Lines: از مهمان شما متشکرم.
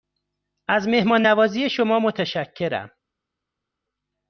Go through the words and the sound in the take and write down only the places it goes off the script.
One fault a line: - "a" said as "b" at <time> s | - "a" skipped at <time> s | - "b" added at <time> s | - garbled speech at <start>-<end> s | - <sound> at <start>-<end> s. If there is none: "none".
- "نوازی" added at 1.2 s